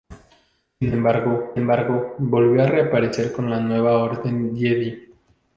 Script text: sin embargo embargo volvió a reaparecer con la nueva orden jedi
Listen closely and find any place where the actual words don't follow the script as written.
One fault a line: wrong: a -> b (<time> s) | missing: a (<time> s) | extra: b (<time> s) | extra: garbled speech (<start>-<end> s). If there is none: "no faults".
no faults